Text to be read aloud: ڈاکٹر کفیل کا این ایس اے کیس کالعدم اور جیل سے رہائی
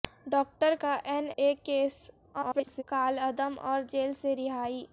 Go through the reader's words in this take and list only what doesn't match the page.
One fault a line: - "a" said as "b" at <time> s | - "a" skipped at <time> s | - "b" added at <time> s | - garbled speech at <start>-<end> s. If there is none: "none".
- "کفیل" skipped at 0.7 s
- "ایس" skipped at 1.3 s
- garbled speech at 2.3-2.8 s